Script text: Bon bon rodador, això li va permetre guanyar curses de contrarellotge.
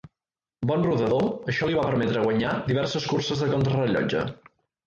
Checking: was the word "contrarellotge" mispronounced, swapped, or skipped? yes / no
no